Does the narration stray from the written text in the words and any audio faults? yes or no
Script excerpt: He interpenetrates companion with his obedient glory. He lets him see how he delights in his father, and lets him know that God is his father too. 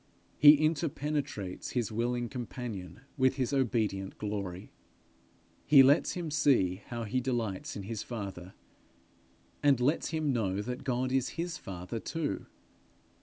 yes